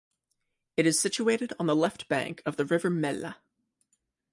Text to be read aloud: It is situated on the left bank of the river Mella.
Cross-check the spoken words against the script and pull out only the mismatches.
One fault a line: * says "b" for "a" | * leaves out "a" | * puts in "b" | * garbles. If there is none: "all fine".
all fine